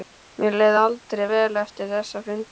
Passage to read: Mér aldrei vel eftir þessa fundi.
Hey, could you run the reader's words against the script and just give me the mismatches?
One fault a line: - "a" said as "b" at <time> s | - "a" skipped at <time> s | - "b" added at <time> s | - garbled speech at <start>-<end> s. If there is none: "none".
- "leið" added at 0.6 s